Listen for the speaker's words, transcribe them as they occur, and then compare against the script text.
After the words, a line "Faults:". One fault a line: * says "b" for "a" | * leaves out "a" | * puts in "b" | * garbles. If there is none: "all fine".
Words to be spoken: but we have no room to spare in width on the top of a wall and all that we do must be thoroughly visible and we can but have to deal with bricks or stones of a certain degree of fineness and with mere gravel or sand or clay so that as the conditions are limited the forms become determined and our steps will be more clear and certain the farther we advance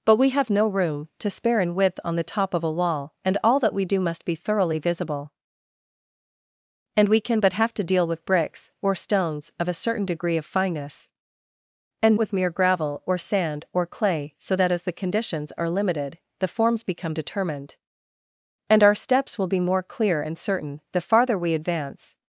but we have no room to spare in width on the top of a wall and all that we do must be thoroughly visible and we can but have to deal with bricks or stones of a certain degree of fineness and with mere gravel or sand or clay so that as the conditions are limited the forms become determined and our steps will be more clear and certain the farther we advance
Faults:
all fine